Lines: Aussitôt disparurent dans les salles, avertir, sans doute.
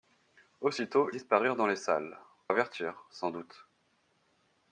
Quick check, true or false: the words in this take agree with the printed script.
true